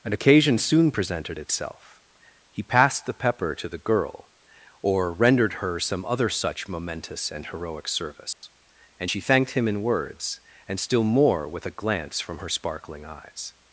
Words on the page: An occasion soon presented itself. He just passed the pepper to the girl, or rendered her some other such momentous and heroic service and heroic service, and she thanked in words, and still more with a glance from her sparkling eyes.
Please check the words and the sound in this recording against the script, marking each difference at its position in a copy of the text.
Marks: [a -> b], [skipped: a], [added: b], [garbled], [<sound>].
An occasion soon presented itself. He [skipped: just] passed the pepper to the girl, or rendered her some other such momentous and heroic service [dropout] and [skipped: heroic service, and] she thanked [added: him] in words, and still more with a glance from her sparkling eyes.